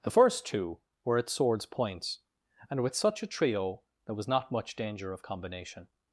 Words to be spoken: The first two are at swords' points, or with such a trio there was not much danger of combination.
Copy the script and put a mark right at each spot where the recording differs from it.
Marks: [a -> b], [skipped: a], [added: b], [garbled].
The first two [are -> were] at swords' points, [or -> and] with such a trio there was not much danger of combination.